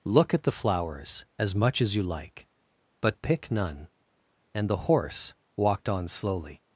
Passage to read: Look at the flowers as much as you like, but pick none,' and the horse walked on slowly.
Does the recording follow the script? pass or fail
pass